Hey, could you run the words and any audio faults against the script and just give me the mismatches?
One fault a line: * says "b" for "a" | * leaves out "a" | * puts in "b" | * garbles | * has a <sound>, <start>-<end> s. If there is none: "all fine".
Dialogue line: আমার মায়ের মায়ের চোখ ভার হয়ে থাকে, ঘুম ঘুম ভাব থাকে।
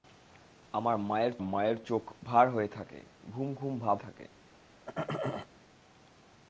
* has a throat clearing, 4.9-5.5 s